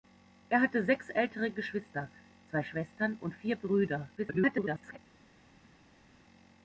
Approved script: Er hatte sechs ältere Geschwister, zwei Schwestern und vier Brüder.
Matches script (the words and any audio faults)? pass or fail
fail